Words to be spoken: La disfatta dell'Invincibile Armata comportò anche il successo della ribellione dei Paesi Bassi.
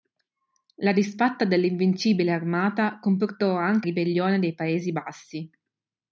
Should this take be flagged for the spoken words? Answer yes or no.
yes